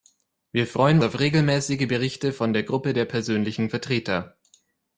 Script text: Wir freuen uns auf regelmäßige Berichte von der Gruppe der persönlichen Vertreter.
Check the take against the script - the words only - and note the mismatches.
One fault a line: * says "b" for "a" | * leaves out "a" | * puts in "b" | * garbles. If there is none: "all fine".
* leaves out "uns"